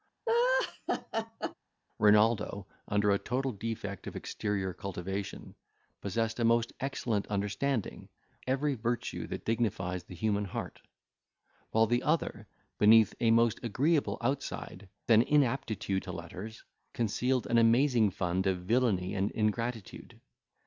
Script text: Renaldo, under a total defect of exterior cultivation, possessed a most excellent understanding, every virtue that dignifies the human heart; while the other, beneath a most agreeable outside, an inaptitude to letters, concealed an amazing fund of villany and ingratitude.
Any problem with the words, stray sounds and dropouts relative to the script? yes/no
yes